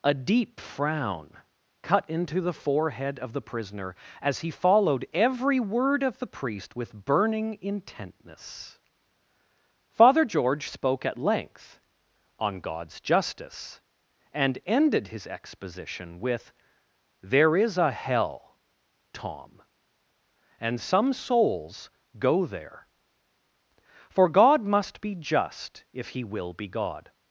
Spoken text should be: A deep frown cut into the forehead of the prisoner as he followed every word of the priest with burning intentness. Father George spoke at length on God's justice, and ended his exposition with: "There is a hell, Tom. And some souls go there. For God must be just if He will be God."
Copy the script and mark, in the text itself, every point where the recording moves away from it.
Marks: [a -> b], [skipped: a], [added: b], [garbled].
A deep frown cut into the forehead of the prisoner as he followed every word of the priest with burning intentness. Father George spoke at length on God's justice, and ended his exposition with: "There is a hell, Tom. And some souls go there. For God must be just if He will be God."